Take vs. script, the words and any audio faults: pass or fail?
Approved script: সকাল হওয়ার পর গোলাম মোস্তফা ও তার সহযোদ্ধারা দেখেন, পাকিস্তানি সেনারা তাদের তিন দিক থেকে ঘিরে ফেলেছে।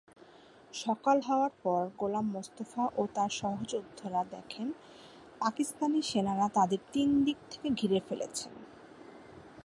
pass